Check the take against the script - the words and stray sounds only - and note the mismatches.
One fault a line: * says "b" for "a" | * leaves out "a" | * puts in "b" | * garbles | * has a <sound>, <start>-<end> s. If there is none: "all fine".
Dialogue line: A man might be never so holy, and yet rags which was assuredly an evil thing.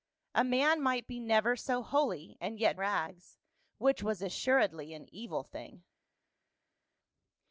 all fine